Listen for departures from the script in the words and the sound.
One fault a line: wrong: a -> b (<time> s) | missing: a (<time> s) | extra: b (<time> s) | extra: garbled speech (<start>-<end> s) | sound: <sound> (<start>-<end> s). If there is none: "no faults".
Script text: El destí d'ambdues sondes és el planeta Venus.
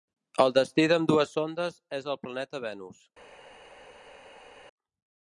no faults